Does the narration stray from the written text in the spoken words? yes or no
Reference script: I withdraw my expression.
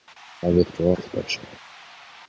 yes